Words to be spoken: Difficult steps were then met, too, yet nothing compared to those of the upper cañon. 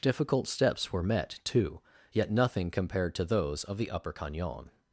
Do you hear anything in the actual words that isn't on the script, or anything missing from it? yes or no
yes